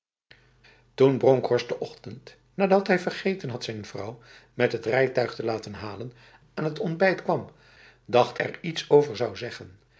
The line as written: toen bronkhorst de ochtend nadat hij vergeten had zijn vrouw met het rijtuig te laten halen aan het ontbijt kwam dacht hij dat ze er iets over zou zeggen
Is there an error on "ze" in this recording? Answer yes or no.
yes